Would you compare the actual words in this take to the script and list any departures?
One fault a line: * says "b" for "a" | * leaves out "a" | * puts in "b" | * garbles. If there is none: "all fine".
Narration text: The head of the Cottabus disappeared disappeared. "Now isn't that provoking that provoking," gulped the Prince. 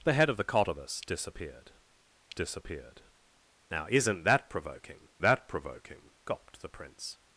all fine